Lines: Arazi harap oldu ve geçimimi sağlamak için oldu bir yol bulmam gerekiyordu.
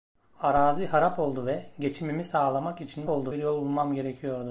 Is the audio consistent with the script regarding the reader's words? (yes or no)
yes